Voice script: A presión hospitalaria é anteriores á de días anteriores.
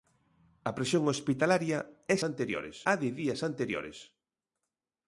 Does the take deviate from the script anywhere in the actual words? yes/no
no